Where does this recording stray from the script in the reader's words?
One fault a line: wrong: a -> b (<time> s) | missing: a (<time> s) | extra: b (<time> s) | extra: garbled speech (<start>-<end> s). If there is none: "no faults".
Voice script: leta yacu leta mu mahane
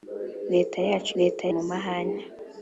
no faults